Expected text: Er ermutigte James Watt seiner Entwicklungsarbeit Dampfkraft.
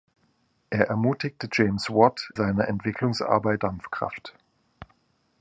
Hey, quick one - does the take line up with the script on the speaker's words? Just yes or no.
yes